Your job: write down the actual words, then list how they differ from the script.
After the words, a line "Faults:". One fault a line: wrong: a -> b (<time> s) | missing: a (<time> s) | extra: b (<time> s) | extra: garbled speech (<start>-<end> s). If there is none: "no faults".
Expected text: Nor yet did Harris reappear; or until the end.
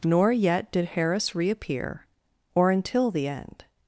Nor yet did Harris reappear; or until the end.
Faults:
no faults